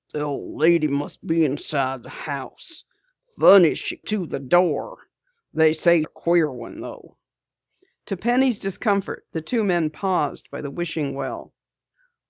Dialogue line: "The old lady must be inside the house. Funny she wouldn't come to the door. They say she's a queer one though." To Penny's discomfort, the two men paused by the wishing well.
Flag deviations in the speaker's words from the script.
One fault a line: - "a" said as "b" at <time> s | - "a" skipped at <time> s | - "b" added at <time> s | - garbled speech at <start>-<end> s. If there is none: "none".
- "wouldn't come" skipped at 4.0 s
- "she's" skipped at 6.0 s